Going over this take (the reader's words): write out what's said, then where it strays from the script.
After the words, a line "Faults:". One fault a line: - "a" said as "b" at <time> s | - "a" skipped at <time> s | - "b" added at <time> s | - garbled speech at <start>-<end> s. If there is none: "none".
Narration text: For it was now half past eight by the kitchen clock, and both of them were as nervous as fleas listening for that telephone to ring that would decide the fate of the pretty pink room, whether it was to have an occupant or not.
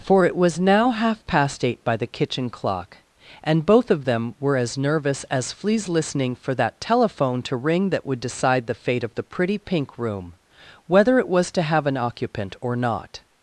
For it was now half past eight by the kitchen clock, and both of them were as nervous as fleas listening for that telephone to ring that would decide the fate of the pretty pink room, whether it was to have an occupant or not.
Faults:
none